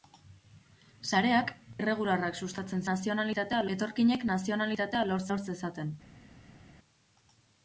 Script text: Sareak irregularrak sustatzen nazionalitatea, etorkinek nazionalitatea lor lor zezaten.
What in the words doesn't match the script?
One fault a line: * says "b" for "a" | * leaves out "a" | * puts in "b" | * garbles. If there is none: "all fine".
all fine